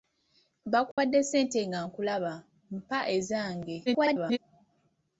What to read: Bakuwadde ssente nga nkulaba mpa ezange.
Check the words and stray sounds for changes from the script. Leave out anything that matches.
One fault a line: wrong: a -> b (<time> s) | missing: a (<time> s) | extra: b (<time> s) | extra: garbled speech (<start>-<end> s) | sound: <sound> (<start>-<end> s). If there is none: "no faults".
sound: dropout (0.9-1.0 s)
extra: garbled speech (3.9-4.4 s)